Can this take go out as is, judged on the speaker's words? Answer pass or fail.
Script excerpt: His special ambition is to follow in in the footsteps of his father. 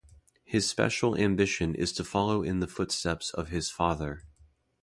fail